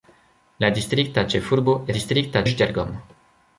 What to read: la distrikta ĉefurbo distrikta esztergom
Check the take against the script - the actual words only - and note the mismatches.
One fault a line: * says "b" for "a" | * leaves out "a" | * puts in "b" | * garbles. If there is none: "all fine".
all fine